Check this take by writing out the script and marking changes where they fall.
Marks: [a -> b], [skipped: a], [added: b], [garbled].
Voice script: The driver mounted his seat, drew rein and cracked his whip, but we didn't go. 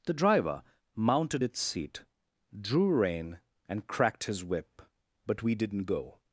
The driver mounted [his -> its] seat, drew rein and cracked his whip, but we didn't go.